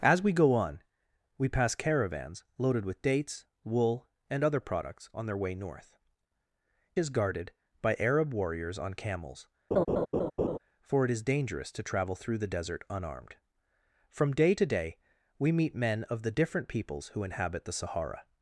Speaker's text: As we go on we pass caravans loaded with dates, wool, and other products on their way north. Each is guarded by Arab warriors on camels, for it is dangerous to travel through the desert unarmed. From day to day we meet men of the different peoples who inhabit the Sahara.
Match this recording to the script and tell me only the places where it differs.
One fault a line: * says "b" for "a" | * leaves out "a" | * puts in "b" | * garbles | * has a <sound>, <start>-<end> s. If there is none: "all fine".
* leaves out "Each"
* has a laugh, 9.7-10.6 s